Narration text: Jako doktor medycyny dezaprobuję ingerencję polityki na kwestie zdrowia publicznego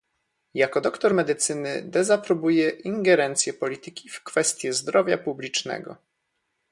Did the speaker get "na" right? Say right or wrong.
wrong